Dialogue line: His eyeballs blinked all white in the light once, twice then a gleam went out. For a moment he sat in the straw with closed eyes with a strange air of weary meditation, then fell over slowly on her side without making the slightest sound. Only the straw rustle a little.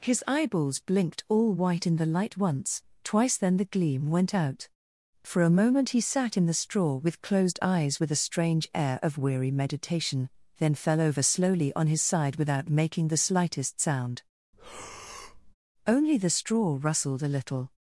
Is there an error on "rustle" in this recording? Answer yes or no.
yes